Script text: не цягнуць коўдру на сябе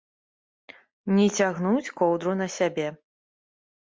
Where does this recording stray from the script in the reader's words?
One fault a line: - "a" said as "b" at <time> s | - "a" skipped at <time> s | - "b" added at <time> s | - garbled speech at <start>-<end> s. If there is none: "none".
none